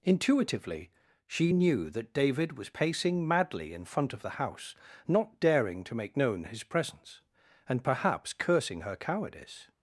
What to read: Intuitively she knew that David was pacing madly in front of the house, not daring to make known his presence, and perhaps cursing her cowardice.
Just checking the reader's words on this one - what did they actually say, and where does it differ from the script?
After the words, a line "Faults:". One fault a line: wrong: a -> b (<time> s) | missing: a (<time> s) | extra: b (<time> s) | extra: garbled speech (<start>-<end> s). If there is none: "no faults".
Intuitively she knew that David was pacing madly in front of the house, not daring to make known his presence, and perhaps cursing her cowardice.
Faults:
no faults